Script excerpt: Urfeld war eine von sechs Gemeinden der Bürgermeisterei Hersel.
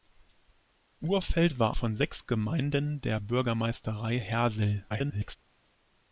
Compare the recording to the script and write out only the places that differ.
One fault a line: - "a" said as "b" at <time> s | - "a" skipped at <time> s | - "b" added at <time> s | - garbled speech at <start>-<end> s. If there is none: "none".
- "eine" skipped at 1.8 s
- garbled speech at 4.9-5.4 s